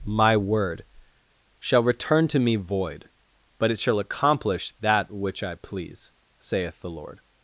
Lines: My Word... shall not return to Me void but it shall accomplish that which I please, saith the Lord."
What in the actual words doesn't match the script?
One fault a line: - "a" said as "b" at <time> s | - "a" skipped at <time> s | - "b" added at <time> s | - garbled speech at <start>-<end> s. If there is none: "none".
- "not" skipped at 1.8 s